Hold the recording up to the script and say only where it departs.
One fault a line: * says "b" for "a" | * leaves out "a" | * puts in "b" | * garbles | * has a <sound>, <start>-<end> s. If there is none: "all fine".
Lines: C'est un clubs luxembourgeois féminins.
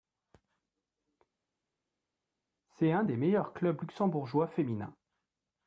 * puts in "des meilleurs"